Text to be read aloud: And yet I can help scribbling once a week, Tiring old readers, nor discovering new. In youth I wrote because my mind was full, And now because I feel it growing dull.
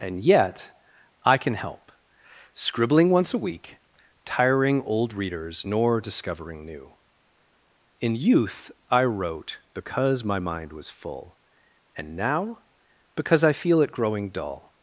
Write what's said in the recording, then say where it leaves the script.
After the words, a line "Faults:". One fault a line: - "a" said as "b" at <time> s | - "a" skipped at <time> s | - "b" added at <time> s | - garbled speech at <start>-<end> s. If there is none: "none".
And yet I can help scribbling once a week, Tiring old readers, nor discovering new. In youth I wrote because my mind was full, And now because I feel it growing dull.
Faults:
none